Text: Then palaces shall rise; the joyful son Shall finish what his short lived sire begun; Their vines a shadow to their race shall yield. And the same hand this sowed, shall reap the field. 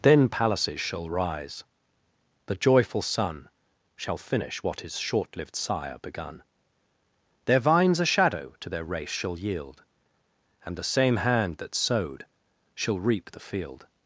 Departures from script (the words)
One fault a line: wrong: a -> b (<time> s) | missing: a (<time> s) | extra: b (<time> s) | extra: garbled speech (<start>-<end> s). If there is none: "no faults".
wrong: this -> that (11.6 s)